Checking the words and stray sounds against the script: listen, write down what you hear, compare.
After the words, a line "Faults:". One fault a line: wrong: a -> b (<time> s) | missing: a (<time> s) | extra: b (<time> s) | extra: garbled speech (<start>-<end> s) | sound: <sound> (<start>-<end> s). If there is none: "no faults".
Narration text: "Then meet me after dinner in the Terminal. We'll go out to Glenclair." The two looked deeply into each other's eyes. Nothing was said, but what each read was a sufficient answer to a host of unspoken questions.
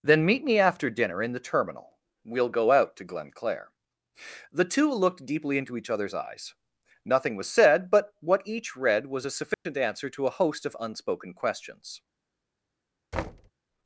"Then meet me after dinner in the Terminal. We'll go out to Glenclair." The two looked deeply into each other's eyes. Nothing was said, but what each read was a sufficient answer to a host of unspoken questions.
Faults:
sound: dropout (9.5-9.7 s)
sound: thud (13.1-13.5 s)